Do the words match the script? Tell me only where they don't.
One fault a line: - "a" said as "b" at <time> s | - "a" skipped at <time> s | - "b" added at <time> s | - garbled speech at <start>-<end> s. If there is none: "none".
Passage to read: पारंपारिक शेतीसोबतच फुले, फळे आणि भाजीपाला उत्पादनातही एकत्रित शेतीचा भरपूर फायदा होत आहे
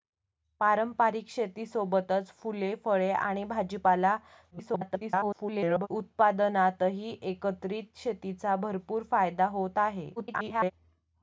- garbled speech at 4.5-5.9 s
- garbled speech at 10.2-10.7 s